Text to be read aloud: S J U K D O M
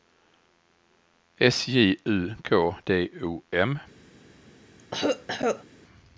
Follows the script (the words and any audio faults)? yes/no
no